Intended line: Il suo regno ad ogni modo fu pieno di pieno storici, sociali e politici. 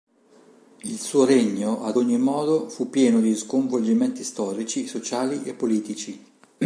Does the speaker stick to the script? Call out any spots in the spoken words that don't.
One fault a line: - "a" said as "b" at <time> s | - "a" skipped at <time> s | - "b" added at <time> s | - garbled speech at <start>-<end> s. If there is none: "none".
- "pieno" said as "sconvolgimenti" at 3.3 s